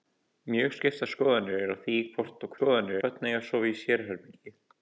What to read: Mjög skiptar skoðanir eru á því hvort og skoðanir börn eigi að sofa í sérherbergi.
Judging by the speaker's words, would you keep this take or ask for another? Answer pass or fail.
pass